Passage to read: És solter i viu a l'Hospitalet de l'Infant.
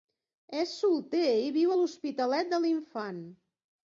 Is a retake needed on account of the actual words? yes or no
no